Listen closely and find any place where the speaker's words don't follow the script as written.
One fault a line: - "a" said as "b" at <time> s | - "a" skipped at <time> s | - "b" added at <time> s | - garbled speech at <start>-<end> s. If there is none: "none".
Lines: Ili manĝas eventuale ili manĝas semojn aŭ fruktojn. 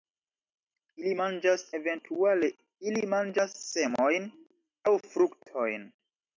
none